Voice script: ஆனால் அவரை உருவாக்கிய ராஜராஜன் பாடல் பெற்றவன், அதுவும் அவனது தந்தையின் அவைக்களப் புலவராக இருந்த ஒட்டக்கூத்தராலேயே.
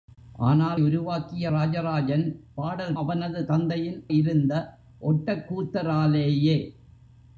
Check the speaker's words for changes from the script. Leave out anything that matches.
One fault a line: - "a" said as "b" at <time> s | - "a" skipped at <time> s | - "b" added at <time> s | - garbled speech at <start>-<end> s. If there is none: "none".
- "அவரை" skipped at 0.8 s
- "பெற்றவன் அதுவும்" skipped at 2.9 s
- "அவைக்களப் புலவராக" skipped at 4.0 s